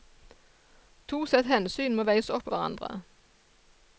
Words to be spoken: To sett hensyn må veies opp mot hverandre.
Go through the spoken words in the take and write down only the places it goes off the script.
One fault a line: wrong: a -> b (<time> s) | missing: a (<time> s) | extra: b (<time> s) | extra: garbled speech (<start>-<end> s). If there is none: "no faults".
missing: mot (2.5 s)